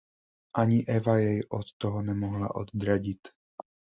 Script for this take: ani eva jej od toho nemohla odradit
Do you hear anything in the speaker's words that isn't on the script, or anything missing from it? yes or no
no